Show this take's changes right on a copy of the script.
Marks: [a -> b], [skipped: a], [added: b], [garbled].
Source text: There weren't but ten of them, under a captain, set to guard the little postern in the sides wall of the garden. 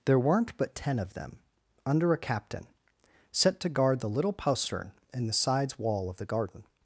There weren't but ten of them, under a captain, set to guard the little postern in the sides wall of the garden.